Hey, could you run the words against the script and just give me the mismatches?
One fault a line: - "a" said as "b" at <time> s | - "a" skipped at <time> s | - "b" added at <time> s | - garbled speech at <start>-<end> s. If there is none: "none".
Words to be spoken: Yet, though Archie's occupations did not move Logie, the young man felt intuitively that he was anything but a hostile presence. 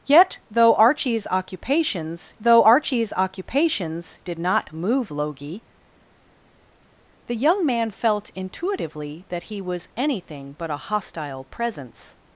- "though Archie's occupations" added at 2.4 s